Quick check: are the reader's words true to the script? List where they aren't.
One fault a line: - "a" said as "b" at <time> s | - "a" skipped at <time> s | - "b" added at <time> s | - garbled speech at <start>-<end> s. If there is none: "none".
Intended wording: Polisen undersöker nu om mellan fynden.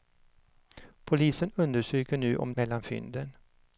none